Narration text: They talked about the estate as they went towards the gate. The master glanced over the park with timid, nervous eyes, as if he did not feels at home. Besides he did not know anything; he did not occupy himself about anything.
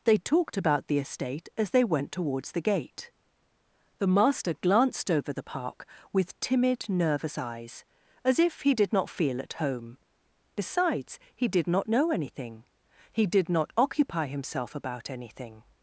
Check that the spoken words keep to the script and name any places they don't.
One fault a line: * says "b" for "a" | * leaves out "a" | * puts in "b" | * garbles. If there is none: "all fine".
* says "feel" for "feels"